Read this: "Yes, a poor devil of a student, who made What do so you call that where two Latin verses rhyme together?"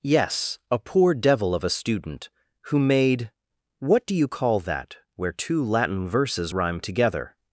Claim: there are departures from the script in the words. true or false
true